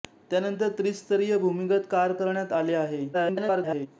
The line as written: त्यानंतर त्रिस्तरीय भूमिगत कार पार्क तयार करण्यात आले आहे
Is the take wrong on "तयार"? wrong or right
wrong